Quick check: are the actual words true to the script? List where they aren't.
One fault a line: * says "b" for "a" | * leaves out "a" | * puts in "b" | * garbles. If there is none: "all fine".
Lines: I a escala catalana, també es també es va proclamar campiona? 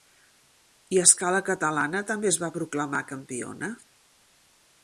* leaves out "també es"